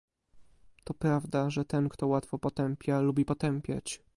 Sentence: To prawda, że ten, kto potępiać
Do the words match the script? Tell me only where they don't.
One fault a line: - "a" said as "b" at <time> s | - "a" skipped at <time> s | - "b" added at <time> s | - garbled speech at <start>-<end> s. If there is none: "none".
- "łatwo potępia lubi" added at 2.1 s